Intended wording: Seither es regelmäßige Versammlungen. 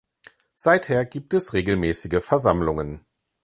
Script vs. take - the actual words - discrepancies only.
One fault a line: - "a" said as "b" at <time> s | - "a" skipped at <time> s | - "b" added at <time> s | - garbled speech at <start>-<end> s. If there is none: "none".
- "gibt" added at 1.1 s